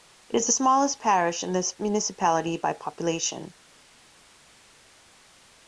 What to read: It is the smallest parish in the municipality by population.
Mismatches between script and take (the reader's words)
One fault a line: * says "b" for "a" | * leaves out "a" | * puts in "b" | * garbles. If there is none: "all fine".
all fine